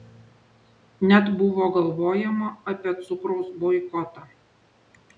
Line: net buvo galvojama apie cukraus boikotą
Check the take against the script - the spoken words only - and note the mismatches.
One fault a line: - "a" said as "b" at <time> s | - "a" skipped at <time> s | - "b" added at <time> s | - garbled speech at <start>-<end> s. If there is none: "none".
none